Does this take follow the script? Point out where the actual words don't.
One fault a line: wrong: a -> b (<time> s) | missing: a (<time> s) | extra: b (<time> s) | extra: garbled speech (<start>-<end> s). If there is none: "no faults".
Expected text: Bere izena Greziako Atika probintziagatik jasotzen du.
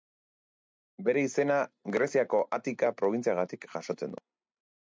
no faults